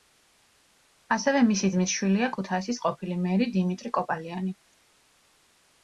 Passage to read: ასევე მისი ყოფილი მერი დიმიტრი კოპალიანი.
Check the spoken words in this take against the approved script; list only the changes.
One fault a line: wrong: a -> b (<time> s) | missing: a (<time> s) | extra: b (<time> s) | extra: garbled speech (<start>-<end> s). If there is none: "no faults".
extra: ძმის შვილია ქუთაისის (1.8 s)